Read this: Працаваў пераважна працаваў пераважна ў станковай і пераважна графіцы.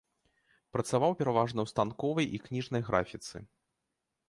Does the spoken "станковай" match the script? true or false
true